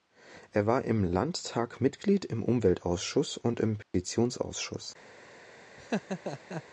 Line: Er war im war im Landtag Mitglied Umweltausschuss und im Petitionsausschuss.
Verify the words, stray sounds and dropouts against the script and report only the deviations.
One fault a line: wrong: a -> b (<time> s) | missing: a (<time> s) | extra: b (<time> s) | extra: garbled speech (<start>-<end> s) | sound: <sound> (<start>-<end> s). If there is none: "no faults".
missing: war im (1.0 s)
extra: im (2.2 s)
sound: dropout (3.8-3.9 s)
sound: laugh (5.8-6.6 s)